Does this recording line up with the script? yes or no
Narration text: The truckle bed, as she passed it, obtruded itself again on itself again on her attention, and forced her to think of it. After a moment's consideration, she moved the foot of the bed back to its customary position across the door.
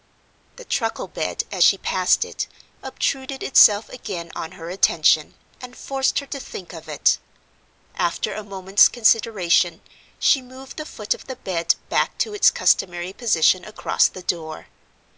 no